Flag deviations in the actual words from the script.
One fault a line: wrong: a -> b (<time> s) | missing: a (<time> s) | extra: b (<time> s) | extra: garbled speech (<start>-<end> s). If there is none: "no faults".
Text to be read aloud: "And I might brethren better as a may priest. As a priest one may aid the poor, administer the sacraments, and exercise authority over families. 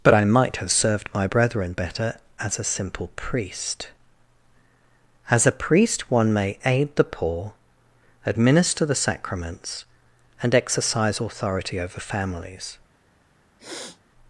wrong: And -> But (0.0 s)
extra: have served my (0.6 s)
wrong: may -> simple (2.7 s)